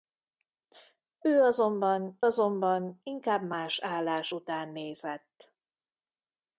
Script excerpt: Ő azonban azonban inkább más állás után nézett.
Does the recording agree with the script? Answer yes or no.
yes